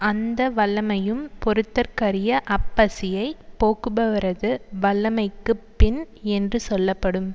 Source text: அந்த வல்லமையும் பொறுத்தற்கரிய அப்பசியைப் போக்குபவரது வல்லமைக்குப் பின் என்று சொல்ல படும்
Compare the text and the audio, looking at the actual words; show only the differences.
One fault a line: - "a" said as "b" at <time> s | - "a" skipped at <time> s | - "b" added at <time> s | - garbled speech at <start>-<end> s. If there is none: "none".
none